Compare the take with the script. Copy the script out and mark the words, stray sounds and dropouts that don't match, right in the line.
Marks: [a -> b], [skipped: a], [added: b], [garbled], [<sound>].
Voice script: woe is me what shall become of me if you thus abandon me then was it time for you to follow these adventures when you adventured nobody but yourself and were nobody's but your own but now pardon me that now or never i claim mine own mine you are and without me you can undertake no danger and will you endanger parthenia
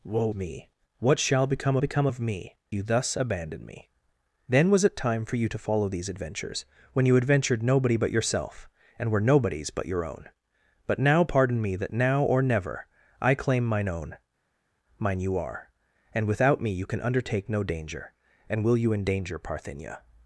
woe [skipped: is] me what shall become [added: become] of me [skipped: if] you thus abandon me then was it time for you to follow these adventures when you adventured nobody but yourself and were nobody's but your own but now pardon me that now or never i claim mine own mine you are and without me you can undertake no danger and will you endanger parthenia